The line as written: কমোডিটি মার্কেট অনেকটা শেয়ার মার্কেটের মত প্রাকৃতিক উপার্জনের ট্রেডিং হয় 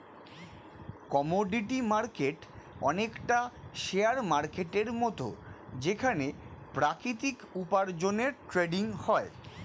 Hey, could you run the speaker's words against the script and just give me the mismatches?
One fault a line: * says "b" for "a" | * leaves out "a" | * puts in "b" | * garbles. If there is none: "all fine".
* puts in "যেখানে"